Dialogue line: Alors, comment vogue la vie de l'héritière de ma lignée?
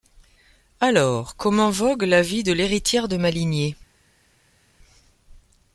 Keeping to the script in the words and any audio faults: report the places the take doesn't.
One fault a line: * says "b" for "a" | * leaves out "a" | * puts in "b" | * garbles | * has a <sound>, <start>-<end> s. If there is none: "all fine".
all fine